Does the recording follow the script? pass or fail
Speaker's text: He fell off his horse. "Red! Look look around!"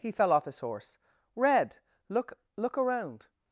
pass